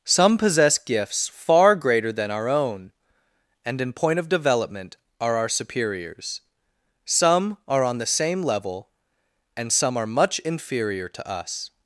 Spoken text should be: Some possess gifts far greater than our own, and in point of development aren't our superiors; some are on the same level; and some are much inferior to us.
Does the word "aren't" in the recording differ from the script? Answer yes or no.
yes